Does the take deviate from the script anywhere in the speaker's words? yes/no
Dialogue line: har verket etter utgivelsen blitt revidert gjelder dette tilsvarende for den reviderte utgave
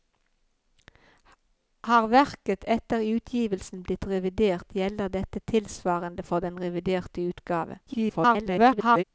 yes